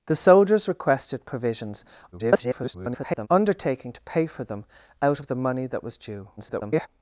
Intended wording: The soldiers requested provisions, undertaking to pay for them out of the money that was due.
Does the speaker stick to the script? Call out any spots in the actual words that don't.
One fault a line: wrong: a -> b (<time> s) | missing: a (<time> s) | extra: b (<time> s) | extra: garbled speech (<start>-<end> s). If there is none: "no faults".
extra: garbled speech (2.1-3.3 s)
extra: garbled speech (6.4-6.9 s)